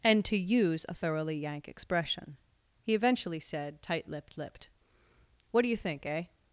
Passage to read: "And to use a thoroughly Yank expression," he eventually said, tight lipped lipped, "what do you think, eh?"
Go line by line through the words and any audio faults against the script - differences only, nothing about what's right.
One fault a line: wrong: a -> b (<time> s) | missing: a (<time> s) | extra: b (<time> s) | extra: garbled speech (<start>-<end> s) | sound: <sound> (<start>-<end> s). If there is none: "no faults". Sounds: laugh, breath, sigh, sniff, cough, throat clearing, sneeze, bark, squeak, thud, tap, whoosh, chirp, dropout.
no faults